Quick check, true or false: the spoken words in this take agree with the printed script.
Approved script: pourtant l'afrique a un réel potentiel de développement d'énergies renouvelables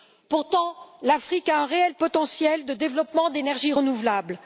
true